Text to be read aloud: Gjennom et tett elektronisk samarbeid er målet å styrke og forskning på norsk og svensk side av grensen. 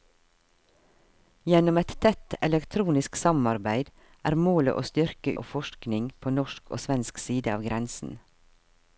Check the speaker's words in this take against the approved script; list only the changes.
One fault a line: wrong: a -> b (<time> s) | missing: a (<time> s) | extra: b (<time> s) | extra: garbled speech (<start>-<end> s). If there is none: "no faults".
no faults